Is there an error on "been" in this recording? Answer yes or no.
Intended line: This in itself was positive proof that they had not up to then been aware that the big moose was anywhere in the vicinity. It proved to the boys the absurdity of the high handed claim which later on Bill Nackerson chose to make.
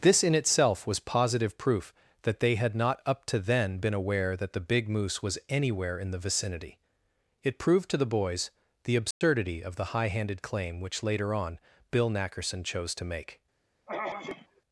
no